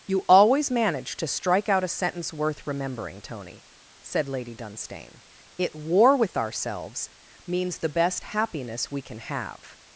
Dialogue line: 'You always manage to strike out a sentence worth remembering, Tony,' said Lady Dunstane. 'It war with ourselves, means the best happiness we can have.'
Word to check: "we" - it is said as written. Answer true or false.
true